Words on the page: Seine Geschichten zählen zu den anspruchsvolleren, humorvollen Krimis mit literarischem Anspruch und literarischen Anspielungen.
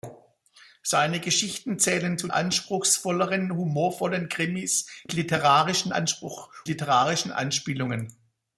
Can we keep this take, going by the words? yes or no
no